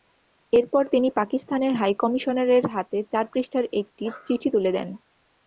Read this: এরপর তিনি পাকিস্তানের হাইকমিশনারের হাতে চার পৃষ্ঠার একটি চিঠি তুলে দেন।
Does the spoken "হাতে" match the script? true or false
true